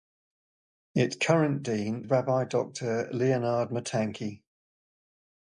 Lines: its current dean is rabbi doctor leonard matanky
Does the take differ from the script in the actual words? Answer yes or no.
yes